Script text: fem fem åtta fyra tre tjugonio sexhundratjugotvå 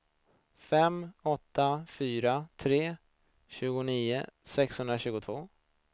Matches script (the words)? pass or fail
fail